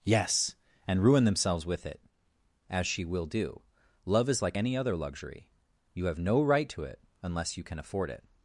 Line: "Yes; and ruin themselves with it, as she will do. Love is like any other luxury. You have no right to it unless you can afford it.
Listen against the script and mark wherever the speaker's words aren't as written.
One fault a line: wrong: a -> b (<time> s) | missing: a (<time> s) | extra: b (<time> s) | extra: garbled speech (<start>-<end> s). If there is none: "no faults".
no faults